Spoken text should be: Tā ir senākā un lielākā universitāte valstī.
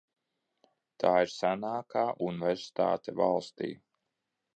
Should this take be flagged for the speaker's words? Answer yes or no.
yes